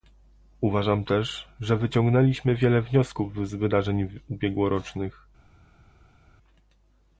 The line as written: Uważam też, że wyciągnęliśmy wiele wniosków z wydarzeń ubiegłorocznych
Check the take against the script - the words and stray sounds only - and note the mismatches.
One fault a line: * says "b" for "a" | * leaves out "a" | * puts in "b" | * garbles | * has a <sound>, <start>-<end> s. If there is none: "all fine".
all fine